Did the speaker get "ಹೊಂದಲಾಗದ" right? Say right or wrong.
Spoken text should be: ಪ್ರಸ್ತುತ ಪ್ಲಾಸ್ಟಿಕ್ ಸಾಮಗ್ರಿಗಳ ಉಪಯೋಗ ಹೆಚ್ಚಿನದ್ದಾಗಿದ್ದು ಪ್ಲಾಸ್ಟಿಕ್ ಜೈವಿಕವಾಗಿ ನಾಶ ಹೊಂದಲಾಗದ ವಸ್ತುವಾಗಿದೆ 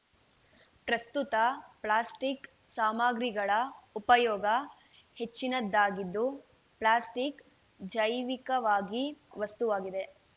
wrong